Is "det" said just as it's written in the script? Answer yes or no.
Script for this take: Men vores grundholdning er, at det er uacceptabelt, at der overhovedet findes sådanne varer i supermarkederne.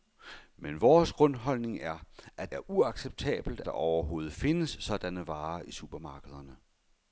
no